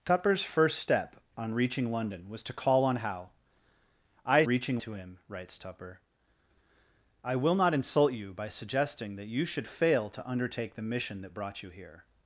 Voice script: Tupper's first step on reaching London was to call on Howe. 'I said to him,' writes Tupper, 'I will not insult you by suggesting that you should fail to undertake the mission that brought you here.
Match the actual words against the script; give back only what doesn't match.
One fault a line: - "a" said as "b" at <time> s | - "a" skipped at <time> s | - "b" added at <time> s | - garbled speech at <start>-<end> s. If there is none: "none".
- "said" said as "reaching" at 4.4 s